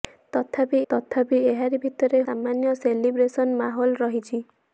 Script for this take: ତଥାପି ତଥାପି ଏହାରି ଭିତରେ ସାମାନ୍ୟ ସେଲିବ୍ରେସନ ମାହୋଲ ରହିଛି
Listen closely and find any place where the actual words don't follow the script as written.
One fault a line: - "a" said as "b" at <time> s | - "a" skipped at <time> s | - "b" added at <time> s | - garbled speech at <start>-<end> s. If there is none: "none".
none